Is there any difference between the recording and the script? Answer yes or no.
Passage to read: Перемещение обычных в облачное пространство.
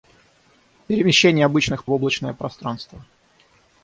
no